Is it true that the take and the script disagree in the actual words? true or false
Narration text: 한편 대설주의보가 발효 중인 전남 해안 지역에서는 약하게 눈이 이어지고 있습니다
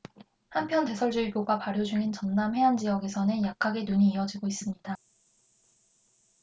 false